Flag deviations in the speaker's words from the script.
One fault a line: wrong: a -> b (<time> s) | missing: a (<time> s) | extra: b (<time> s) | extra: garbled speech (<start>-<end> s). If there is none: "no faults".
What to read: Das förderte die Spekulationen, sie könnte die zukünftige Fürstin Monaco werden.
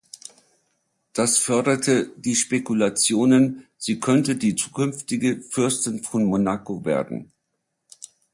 extra: von (6.0 s)